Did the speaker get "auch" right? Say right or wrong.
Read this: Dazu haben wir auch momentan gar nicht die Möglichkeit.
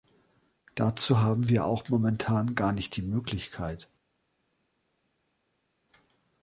right